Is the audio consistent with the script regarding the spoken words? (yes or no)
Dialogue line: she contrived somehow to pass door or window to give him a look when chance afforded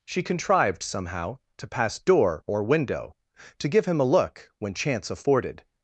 yes